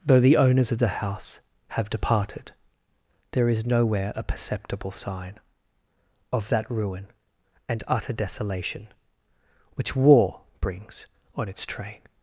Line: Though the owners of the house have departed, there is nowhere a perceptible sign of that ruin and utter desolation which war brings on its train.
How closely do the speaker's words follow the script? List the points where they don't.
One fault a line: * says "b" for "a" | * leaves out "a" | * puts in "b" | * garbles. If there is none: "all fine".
all fine